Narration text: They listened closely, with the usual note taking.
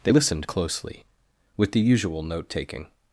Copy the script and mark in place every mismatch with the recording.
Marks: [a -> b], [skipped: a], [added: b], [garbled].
They listened closely, with the usual note taking.